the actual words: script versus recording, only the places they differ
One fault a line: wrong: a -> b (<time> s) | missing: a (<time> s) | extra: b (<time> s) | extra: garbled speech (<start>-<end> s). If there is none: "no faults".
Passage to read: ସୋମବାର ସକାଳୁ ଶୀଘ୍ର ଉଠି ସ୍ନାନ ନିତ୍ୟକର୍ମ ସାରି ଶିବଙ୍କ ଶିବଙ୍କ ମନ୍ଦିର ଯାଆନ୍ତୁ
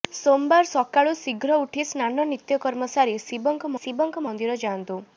no faults